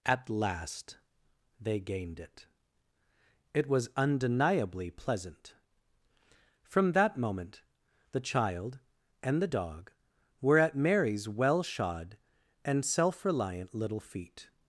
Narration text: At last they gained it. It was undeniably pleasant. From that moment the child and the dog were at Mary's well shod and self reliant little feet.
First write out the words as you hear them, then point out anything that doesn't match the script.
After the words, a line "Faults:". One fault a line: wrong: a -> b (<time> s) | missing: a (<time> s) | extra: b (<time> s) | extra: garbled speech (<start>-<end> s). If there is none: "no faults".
At last they gained it. It was undeniably pleasant. From that moment the child and the dog were at Mary's well shod and self reliant little feet.
Faults:
no faults